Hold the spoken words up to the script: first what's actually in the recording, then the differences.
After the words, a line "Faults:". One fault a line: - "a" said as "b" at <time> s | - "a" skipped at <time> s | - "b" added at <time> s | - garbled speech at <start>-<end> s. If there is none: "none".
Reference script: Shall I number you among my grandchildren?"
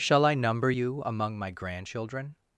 Shall I number you among my grandchildren?"
Faults:
none